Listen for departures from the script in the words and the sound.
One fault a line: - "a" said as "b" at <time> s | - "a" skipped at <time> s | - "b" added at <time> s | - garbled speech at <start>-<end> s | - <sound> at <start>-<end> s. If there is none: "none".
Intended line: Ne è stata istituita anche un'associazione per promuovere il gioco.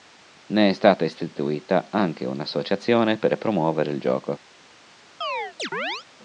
- chirp at 5.2-6.1 s